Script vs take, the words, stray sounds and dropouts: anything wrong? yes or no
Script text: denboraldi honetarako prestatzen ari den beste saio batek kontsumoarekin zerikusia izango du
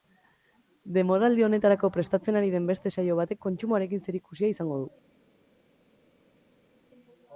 no